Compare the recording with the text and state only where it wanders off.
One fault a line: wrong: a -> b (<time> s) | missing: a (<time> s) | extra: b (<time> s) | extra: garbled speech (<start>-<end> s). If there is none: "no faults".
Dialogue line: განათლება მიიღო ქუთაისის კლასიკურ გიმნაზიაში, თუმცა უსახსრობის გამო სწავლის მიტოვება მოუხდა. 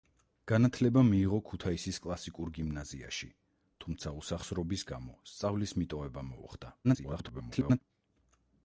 extra: garbled speech (6.8-7.8 s)